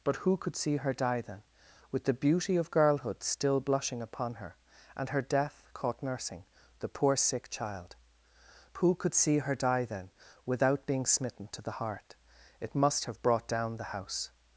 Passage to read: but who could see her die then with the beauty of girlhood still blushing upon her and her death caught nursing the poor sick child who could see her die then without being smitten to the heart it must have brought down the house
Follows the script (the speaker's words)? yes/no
yes